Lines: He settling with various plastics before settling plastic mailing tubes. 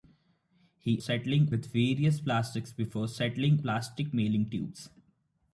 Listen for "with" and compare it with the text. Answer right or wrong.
right